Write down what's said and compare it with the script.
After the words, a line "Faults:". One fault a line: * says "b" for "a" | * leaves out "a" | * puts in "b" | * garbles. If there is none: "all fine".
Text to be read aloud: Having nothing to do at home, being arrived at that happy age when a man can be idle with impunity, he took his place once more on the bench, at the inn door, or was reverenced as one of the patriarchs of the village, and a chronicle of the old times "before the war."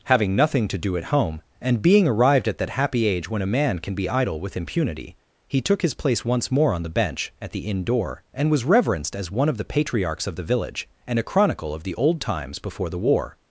Having nothing to do at home, and being arrived at that happy age when a man can be idle with impunity, he took his place once more on the bench, at the inn door, and was reverenced as one of the patriarchs of the village, and a chronicle of the old times "before the war."
Faults:
* puts in "and"
* says "and" for "or"